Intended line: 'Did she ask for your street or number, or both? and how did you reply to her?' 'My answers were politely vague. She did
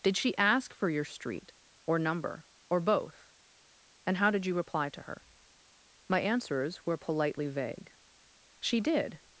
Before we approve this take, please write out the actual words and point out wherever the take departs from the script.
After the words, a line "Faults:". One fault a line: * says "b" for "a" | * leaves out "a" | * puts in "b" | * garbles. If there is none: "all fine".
'Did she ask for your street or number, or both? and how did you reply to her?' 'My answers were politely vague. She did
Faults:
all fine